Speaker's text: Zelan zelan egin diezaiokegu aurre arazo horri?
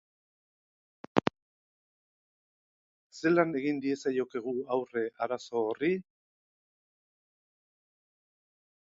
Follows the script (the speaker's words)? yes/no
no